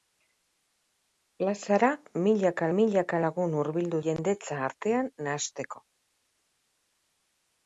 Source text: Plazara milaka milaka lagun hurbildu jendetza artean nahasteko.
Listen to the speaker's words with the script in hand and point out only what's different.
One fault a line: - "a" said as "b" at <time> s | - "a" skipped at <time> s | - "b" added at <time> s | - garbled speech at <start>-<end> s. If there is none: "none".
none